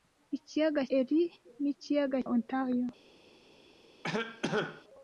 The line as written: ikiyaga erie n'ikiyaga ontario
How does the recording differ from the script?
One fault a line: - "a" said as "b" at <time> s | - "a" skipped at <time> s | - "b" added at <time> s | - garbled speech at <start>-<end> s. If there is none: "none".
none